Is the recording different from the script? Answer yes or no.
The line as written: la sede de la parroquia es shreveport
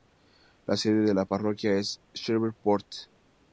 no